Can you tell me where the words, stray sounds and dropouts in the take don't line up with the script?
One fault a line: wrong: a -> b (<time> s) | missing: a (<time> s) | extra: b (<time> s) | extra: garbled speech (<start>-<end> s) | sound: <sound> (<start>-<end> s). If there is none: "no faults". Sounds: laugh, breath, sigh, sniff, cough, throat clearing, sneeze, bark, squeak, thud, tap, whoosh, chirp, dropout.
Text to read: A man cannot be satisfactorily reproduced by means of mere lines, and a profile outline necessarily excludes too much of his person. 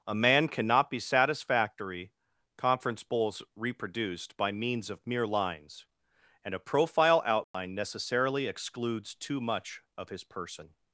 wrong: satisfactorily -> satisfactory conference bowls (1.0 s)
sound: dropout (7.4-7.5 s)